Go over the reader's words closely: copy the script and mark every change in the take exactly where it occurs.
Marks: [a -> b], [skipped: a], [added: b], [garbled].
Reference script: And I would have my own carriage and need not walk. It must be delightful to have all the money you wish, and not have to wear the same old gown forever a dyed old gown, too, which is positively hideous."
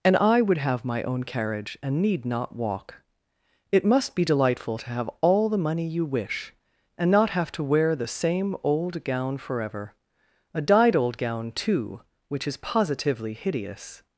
And I would have my own carriage and need not walk. It must be delightful to have all the money you wish, and not have to wear the same old gown forever a dyed old gown, too, which is positively hideous."